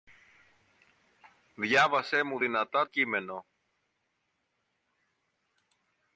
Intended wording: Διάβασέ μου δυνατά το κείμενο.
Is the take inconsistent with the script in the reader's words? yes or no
yes